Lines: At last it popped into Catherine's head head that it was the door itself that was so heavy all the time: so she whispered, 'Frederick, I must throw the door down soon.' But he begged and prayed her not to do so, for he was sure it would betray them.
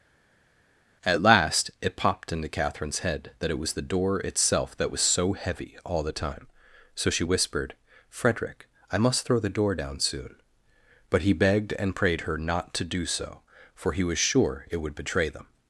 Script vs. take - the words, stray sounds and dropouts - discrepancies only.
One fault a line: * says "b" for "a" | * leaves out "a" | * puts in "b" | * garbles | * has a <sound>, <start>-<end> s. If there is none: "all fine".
* leaves out "head"